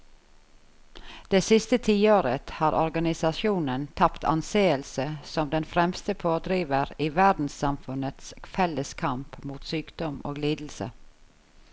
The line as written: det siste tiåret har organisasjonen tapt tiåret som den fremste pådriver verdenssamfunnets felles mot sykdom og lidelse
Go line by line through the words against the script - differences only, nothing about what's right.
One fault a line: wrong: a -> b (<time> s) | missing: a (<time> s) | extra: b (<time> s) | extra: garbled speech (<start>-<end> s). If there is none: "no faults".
wrong: tiåret -> anseelse (4.2 s)
extra: i (7.0 s)
extra: kamp (8.9 s)